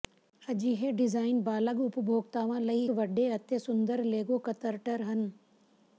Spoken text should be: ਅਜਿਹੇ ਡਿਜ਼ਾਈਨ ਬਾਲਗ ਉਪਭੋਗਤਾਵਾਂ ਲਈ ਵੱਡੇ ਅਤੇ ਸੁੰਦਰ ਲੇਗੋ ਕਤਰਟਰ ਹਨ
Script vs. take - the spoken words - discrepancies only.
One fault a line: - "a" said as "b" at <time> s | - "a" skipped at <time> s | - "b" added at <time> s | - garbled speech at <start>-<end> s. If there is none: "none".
none